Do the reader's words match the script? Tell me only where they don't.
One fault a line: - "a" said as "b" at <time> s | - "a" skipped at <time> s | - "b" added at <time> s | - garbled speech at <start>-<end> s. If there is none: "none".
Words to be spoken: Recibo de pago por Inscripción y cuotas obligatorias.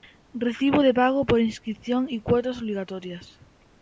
none